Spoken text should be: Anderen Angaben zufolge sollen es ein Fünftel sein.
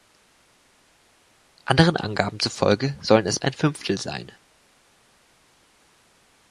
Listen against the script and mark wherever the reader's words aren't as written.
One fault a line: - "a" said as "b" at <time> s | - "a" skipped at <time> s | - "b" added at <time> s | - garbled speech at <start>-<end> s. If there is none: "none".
none